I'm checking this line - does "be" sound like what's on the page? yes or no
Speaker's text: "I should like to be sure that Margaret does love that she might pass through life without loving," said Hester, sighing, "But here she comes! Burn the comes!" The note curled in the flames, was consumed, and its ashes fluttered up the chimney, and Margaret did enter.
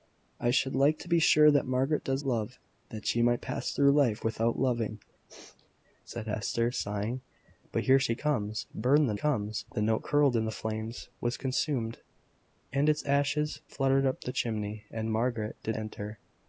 yes